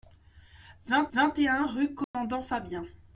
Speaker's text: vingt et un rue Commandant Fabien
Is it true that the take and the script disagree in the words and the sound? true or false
true